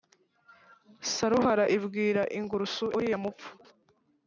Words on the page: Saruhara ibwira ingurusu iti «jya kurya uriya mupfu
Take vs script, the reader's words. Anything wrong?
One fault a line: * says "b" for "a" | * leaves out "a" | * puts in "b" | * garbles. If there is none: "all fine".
* leaves out "iti jya kurya"